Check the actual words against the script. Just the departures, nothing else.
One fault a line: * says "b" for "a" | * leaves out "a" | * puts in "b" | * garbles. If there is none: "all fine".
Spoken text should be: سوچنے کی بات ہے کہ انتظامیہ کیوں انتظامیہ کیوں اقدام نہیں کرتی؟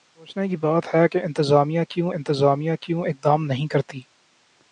all fine